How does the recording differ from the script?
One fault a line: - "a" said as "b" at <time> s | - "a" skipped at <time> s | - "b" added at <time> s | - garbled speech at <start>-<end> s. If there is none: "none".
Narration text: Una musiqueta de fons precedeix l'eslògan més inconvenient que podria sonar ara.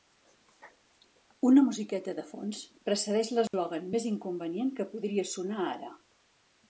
none